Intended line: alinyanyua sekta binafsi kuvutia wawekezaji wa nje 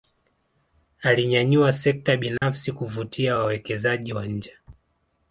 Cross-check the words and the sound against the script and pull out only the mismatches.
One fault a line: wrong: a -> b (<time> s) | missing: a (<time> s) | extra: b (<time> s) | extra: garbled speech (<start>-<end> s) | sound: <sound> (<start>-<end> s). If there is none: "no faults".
sound: dropout (2.4-2.4 s)